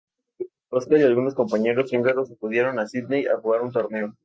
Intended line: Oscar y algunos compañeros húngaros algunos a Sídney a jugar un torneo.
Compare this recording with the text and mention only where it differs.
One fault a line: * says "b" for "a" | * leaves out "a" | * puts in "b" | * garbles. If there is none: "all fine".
* says "acudieron" for "algunos"